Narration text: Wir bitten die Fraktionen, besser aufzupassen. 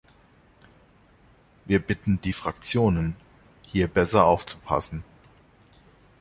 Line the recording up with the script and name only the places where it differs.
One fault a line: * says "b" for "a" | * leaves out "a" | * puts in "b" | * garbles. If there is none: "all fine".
* puts in "hier"